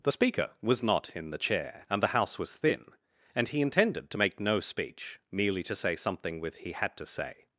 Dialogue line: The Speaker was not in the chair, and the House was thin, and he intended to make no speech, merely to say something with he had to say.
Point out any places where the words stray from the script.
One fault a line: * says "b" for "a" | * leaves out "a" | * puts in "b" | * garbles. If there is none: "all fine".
all fine